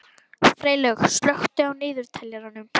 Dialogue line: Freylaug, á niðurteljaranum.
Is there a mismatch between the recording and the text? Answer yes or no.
yes